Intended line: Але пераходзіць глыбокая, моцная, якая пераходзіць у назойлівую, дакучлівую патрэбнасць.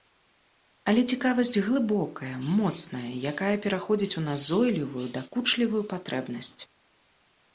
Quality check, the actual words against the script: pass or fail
fail